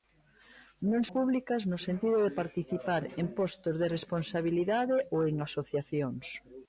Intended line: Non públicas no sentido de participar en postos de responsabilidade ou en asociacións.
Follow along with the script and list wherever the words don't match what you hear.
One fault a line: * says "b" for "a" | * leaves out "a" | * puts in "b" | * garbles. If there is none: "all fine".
all fine